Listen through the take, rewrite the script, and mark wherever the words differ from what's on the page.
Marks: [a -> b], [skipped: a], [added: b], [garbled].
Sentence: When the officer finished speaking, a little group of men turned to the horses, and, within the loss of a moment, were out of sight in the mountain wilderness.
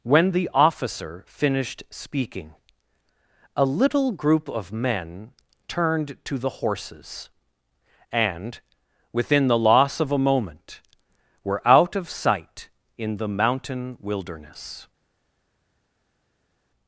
When the officer finished speaking, a little group of men turned to the horses, and, within the loss of a moment, were out of sight in the mountain wilderness.